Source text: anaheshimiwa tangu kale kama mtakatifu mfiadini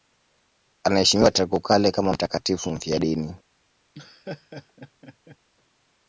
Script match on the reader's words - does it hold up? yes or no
yes